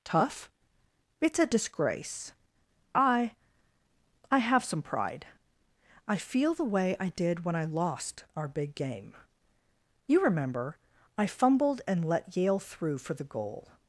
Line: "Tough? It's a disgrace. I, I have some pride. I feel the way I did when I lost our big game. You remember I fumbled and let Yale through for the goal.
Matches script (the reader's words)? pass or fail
pass